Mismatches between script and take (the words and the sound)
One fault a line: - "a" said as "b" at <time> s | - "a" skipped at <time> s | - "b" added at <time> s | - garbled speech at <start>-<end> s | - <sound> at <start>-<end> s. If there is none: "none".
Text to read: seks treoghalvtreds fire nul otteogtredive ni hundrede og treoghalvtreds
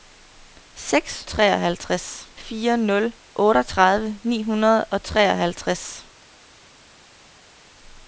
none